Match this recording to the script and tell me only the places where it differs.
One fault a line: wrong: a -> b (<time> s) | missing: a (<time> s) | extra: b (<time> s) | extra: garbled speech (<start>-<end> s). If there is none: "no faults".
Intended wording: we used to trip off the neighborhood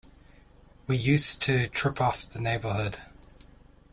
no faults